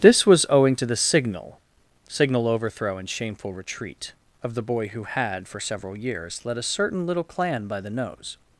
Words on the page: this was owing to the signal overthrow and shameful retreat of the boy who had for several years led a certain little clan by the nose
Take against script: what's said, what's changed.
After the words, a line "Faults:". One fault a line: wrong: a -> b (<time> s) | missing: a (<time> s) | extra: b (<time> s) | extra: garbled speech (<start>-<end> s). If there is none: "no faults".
this was owing to the signal signal overthrow and shameful retreat of the boy who had for several years led a certain little clan by the nose
Faults:
extra: signal (2.1 s)